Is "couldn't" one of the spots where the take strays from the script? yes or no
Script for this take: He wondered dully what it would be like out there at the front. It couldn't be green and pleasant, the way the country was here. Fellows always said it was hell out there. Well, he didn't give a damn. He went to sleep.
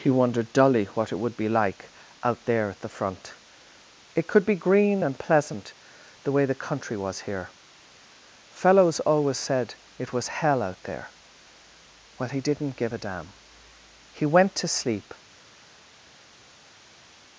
yes